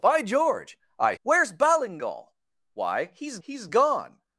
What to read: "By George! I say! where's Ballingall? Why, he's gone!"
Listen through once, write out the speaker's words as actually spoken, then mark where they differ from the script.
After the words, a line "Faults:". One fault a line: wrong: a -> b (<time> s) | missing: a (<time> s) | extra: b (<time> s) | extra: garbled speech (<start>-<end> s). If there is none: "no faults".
"By George! I! where's Ballingall? Why, he's he's gone!"
Faults:
missing: say (1.1 s)
extra: he's (3.4 s)